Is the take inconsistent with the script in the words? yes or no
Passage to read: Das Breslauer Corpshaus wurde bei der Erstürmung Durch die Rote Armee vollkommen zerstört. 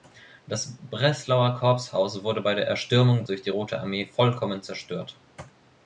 no